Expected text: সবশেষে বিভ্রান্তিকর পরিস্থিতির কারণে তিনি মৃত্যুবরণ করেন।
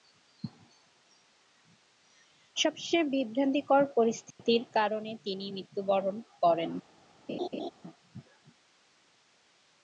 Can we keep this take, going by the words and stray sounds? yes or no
no